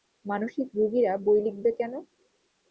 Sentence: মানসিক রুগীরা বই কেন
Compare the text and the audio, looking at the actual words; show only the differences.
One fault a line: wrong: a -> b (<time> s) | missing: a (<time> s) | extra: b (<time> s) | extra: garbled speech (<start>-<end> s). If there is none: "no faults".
extra: লিখবে (1.5 s)